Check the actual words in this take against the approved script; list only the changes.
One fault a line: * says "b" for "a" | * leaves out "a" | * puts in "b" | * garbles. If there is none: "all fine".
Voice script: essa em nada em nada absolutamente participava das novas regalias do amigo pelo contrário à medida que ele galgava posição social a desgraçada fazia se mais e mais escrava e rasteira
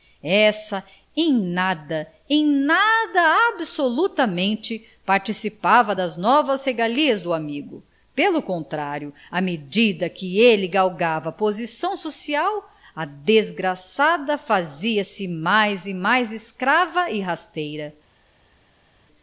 all fine